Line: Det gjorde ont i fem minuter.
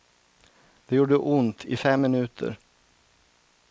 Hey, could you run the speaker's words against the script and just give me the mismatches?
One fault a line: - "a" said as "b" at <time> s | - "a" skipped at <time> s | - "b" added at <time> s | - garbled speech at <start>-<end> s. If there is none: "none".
none